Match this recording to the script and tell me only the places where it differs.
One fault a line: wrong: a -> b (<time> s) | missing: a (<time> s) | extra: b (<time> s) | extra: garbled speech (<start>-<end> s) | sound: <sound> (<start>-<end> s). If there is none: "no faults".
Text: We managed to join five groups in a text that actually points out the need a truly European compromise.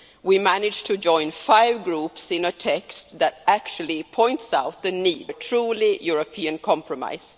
no faults